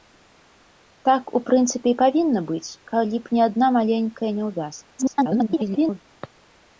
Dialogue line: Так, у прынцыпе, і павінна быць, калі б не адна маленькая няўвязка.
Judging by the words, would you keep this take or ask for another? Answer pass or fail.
fail